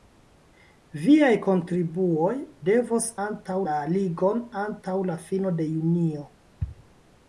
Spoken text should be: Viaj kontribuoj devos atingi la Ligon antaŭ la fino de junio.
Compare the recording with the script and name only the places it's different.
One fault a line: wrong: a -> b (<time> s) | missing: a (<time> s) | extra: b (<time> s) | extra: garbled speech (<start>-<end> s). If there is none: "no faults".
wrong: atingi -> antaŭ (3.3 s)